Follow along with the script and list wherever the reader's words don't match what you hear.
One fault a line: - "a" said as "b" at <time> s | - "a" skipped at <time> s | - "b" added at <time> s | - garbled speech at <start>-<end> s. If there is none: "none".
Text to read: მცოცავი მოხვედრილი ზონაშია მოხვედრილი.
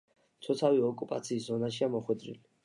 - "მოხვედრილი" said as "ოკუპაციის" at 0.9 s